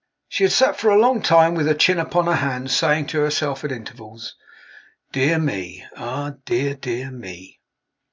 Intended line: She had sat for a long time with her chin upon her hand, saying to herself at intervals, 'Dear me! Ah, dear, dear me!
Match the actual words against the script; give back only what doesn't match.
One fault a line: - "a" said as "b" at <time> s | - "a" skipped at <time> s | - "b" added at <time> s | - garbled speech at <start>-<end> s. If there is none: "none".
none